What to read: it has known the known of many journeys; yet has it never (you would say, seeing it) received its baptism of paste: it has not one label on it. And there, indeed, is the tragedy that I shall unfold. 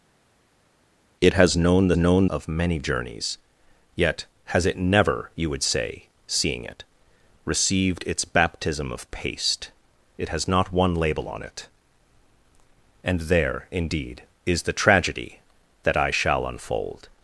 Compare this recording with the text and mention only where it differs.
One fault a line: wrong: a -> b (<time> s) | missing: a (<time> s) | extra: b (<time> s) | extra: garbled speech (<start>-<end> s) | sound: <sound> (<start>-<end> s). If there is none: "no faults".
no faults